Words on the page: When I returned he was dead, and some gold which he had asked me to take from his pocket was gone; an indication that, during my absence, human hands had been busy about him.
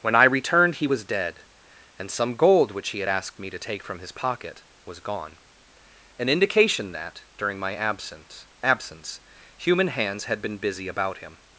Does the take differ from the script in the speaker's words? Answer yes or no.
yes